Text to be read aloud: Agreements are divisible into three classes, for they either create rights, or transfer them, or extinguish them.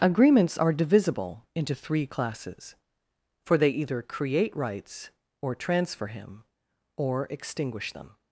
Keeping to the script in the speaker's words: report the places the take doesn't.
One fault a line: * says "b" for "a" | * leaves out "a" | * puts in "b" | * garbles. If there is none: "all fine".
* says "him" for "them"